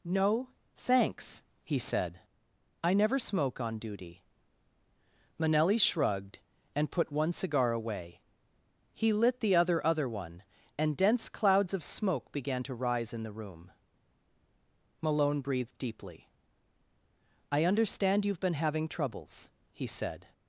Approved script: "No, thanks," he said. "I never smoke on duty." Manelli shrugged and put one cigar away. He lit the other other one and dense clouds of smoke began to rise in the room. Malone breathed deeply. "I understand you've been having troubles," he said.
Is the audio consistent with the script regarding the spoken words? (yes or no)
yes